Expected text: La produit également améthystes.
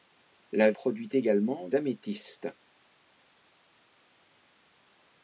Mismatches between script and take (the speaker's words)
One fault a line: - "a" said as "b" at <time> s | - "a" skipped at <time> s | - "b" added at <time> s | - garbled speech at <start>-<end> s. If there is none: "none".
none